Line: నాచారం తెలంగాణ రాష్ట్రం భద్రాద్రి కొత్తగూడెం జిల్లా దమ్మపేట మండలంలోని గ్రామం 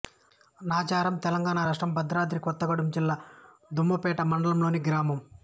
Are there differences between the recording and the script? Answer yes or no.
no